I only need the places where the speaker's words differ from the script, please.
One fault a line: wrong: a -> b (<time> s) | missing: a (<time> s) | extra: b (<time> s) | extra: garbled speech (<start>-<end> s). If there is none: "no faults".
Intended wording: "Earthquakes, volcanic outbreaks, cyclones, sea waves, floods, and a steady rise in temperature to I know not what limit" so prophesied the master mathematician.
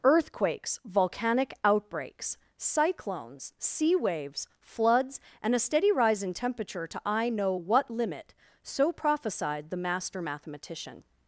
missing: not (7.5 s)